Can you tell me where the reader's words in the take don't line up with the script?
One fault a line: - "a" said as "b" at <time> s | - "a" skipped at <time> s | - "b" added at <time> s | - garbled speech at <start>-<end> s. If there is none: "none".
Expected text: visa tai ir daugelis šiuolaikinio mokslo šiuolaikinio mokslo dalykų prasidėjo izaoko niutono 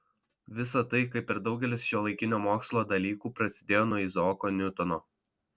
- "kaip" added at 1.1 s
- "šiuolaikinio mokslo" skipped at 2.9 s
- "nuo" added at 3.9 s